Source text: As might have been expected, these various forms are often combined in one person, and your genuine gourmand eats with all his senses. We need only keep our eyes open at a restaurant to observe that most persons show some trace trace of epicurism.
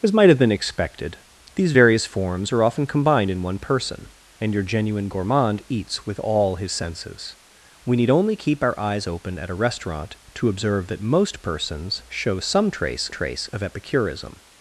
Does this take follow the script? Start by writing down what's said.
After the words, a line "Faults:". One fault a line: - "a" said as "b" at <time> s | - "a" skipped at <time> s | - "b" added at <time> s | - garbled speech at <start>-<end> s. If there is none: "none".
As might have been expected, these various forms are often combined in one person, and your genuine gourmand eats with all his senses. We need only keep our eyes open at a restaurant to observe that most persons show some trace trace of epicurism.
Faults:
none